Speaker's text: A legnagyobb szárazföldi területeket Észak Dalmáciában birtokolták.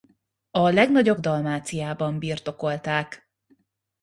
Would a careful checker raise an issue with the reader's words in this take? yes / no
yes